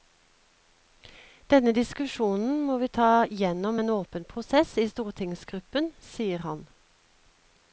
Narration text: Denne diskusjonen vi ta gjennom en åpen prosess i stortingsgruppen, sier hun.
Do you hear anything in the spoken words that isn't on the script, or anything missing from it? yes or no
yes